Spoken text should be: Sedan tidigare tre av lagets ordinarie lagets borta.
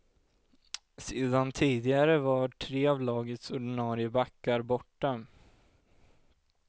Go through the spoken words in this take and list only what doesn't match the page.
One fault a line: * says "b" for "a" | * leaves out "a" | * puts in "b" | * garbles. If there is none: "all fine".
* puts in "var"
* says "backar" for "lagets"